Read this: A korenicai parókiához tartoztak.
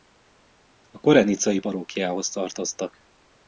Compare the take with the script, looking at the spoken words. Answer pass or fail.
pass